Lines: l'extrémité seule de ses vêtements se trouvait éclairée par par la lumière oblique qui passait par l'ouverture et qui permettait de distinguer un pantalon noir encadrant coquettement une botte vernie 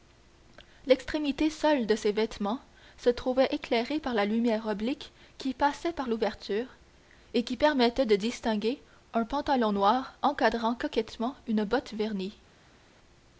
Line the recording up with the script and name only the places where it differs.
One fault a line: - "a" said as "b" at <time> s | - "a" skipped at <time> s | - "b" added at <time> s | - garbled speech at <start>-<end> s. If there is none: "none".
- "par" skipped at 4.2 s